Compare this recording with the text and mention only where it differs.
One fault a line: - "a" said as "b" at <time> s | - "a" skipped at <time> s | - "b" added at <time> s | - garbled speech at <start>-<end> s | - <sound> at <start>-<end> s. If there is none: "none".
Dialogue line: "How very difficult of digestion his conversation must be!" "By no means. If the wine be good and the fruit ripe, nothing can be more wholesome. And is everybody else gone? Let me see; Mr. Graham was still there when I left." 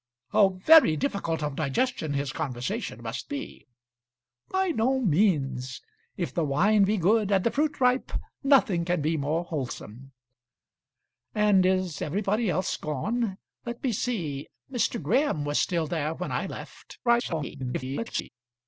- garbled speech at 17.0-18.3 s